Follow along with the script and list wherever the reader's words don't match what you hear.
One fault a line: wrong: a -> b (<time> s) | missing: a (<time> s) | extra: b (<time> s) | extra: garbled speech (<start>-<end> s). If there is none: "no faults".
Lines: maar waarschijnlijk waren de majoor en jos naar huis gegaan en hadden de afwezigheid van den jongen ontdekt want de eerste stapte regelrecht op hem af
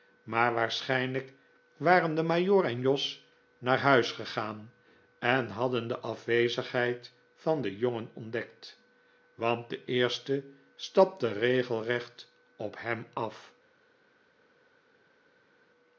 no faults